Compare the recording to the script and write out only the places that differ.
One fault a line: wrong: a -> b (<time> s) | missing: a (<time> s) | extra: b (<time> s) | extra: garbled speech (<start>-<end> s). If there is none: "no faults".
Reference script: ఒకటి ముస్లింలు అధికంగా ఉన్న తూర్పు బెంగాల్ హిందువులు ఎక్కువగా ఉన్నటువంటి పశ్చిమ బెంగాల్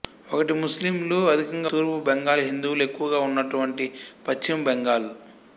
missing: ఉన్న (1.7 s)